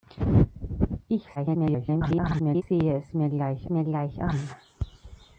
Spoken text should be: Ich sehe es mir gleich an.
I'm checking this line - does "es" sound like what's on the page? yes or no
yes